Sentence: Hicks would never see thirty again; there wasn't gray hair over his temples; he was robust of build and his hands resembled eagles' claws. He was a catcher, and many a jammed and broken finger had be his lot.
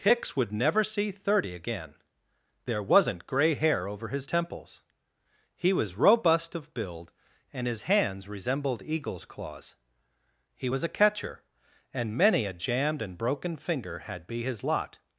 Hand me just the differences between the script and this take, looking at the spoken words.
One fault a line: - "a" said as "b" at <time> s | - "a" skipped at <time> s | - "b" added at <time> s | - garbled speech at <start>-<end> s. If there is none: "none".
none